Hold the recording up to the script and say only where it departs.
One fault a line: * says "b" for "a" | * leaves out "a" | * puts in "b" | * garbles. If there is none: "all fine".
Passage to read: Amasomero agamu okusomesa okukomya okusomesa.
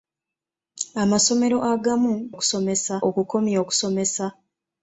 all fine